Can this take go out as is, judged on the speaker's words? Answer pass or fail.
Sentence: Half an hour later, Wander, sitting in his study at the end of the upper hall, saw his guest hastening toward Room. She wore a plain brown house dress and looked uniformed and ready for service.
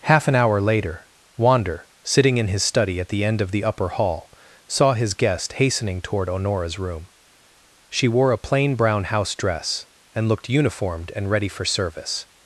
fail